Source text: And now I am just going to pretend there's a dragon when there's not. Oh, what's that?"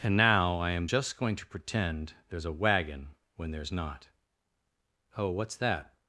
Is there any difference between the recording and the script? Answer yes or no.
yes